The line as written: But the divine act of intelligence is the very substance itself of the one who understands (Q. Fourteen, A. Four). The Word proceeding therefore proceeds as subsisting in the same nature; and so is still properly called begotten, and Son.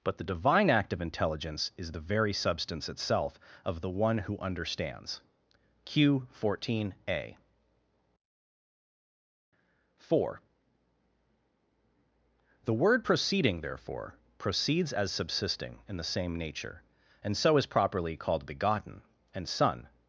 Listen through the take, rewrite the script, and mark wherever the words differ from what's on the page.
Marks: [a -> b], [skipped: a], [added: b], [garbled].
But the divine act of intelligence is the very substance itself of the one who understands (Q. Fourteen, A. Four). The Word proceeding therefore proceeds as subsisting in the same nature; and so is [skipped: still] properly called begotten, and Son.